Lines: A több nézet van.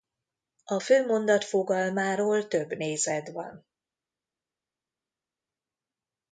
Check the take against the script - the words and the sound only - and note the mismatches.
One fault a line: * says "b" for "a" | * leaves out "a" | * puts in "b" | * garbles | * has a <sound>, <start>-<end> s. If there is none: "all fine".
* puts in "főmondat fogalmáról"